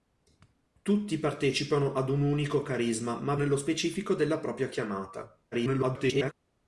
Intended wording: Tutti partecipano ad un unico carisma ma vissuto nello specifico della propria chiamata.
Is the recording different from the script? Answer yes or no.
yes